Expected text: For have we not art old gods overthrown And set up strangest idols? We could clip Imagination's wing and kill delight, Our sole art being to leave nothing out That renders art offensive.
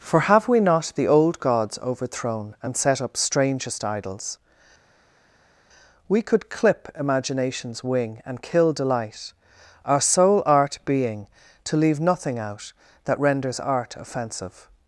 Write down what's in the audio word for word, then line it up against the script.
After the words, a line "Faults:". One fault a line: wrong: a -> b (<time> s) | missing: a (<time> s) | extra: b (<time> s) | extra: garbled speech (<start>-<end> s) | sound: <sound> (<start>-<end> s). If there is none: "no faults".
For have we not the old gods overthrown And set up strangest idols? We could clip Imagination's wing and kill delight, Our sole art being to leave nothing out That renders art offensive.
Faults:
wrong: art -> the (0.9 s)